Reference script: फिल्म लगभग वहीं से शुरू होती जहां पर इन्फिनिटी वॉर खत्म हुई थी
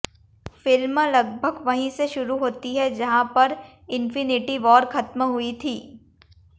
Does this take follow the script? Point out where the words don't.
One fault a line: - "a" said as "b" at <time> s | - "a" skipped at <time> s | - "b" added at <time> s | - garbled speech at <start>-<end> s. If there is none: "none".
- "है" added at 2.7 s